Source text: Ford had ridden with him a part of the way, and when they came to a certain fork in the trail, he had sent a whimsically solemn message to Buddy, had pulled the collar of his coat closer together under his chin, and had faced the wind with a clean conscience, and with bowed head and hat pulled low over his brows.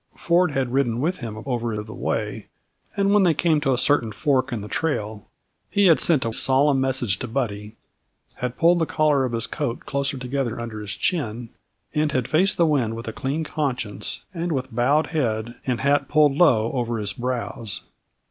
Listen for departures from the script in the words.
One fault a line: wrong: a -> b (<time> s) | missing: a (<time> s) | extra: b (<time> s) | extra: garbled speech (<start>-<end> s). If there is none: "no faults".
wrong: part -> over (1.5 s)
missing: whimsically (6.3 s)